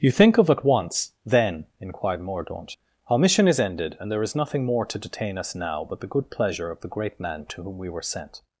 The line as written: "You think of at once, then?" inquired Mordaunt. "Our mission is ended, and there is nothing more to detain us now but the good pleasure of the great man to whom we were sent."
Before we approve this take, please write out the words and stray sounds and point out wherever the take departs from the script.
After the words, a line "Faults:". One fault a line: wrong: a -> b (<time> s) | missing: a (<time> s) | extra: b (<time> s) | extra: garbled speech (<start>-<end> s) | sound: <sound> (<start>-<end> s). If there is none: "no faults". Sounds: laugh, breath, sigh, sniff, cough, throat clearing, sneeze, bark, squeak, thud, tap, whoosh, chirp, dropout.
"You think of at once, then?" inquired Mordaunt. "Our mission is ended, and there is nothing more to detain us now but the good pleasure of the great man to whom we were sent."
Faults:
no faults